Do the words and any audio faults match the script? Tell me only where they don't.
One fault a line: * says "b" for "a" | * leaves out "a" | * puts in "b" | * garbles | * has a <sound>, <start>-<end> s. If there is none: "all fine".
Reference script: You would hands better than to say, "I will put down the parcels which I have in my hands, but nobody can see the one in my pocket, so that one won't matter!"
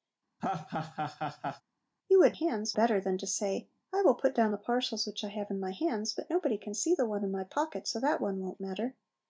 * has a laugh, 0.4-1.6 s